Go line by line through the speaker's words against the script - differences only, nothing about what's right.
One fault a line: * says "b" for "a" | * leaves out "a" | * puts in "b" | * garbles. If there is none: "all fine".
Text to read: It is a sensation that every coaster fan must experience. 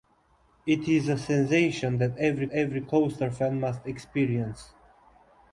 * puts in "every"